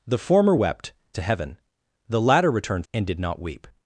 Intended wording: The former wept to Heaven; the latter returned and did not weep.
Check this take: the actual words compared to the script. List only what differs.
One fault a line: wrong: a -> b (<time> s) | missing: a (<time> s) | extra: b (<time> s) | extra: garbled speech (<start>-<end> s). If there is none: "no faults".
no faults